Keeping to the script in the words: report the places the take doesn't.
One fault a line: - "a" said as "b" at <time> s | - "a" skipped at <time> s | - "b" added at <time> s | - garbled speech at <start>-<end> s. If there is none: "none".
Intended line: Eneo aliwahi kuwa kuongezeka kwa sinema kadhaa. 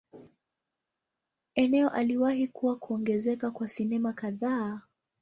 none